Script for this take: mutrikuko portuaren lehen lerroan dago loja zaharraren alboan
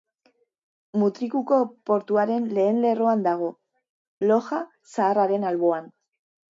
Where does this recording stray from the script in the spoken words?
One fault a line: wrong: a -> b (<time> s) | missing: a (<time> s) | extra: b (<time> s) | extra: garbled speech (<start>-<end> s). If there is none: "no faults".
no faults